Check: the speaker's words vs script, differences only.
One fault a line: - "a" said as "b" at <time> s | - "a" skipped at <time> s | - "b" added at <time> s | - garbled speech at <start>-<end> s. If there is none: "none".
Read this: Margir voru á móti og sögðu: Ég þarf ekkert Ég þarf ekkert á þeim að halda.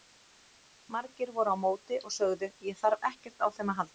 - "Ég þarf ekkert" skipped at 3.5 s